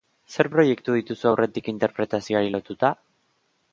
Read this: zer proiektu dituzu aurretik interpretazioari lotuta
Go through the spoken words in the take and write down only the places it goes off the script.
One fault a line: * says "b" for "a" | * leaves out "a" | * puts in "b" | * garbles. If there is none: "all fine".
all fine